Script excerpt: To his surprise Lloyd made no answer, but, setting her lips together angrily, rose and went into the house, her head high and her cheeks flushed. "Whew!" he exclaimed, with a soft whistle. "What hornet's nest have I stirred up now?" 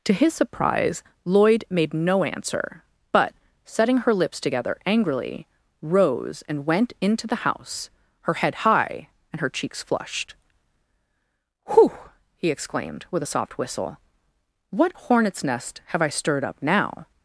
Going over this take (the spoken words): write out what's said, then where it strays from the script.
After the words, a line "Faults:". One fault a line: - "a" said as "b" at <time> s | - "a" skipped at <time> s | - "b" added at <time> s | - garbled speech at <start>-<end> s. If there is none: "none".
To his surprise Lloyd made no answer, but, setting her lips together angrily, rose and went into the house, her head high and her cheeks flushed. "Whew!" he exclaimed, with a soft whistle. "What hornet's nest have I stirred up now?"
Faults:
none